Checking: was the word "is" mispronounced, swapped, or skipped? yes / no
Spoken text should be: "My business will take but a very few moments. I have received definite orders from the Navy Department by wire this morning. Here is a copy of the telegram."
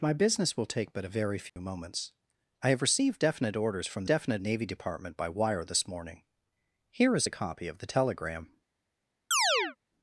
no